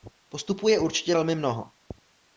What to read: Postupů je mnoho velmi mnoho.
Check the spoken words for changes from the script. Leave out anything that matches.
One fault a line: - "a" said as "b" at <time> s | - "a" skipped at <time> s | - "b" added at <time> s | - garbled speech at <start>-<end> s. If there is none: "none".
- "mnoho" said as "určitě" at 0.8 s